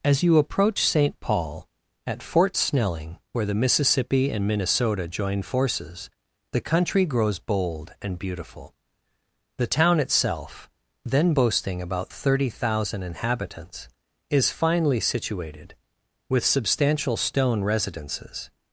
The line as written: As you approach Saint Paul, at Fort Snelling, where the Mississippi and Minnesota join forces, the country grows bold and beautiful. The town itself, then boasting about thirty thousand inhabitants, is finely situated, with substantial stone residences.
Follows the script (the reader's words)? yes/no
yes